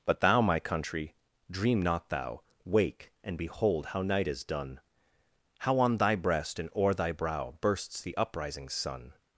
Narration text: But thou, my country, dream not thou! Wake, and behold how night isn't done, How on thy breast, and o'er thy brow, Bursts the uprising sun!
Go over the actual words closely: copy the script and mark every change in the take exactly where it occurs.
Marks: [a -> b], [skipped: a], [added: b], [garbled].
But thou, my country, dream not thou! Wake, and behold how night [isn't -> is] done, How on thy breast, and o'er thy brow, Bursts the uprising sun!